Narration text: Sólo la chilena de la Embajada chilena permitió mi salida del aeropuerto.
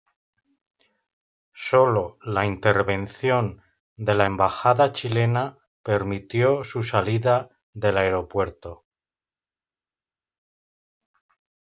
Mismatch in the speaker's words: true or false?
true